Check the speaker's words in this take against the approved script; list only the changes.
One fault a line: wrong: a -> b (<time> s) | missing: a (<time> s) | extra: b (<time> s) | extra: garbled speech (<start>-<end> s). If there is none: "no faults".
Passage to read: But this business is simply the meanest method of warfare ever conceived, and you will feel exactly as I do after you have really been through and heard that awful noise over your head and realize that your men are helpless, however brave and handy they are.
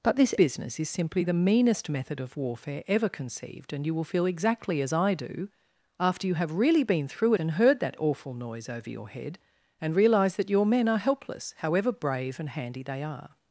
no faults